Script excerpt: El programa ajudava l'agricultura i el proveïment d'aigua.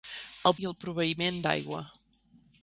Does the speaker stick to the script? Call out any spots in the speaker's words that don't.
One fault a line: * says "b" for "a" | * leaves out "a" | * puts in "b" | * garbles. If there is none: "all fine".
* leaves out "programa ajudava l'agricultura"